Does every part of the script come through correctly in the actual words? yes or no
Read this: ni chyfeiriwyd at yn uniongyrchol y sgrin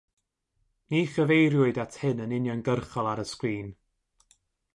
no